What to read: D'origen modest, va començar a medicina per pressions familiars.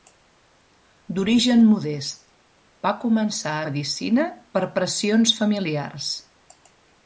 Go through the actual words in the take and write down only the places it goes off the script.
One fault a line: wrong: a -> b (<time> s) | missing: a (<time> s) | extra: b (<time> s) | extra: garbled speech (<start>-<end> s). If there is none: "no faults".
no faults